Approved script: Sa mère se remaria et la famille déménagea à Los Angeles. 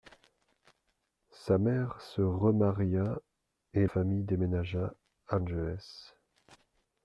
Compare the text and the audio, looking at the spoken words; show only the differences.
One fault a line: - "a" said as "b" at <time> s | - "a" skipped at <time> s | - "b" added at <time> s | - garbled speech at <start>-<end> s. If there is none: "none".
- "la" skipped at 3.9 s
- "Los" skipped at 5.4 s